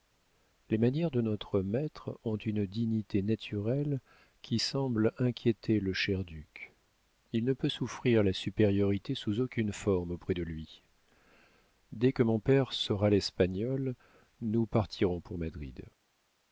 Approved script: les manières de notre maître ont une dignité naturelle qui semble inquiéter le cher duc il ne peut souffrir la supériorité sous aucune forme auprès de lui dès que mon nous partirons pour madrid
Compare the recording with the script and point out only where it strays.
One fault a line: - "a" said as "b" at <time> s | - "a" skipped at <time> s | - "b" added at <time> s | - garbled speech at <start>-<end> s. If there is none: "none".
- "père saura l'espagnol" added at 12.4 s